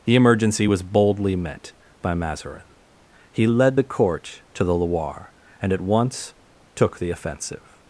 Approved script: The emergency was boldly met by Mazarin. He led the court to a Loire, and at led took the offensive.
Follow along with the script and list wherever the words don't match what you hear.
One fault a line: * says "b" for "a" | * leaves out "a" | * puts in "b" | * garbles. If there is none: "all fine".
* says "the" for "a"
* says "once" for "led"